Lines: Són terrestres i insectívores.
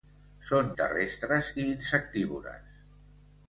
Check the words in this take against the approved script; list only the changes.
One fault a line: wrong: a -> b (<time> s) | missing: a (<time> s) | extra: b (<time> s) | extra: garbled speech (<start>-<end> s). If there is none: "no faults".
no faults